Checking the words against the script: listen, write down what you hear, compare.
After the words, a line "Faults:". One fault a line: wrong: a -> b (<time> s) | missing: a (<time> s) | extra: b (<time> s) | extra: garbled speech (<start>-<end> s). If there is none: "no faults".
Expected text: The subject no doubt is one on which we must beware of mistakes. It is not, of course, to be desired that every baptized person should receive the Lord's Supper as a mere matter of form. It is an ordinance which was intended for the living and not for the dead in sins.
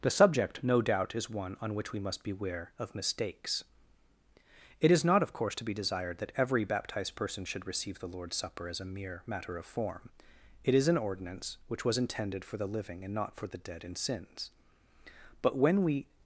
The subject no doubt is one on which we must beware of mistakes. It is not, of course, to be desired that every baptized person should receive the Lord's Supper as a mere matter of form. It is an ordinance which was intended for the living and not for the dead in sins. But when we
Faults:
extra: But when we (15.4 s)